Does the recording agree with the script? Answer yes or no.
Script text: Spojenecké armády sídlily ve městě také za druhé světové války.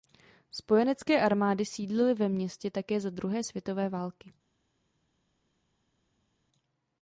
yes